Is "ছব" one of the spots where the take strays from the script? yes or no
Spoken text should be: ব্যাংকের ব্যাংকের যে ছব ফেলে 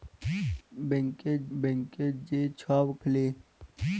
no